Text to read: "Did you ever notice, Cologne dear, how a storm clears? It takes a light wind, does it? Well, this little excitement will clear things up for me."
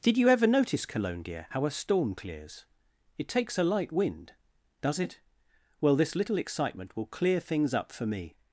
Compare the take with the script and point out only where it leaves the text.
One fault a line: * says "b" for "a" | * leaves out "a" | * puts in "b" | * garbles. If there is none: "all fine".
all fine